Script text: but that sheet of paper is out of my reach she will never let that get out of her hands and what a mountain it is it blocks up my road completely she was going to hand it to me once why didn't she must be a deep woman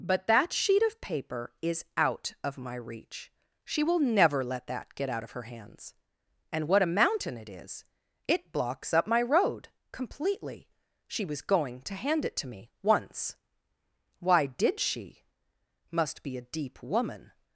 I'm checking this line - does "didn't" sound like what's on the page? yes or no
no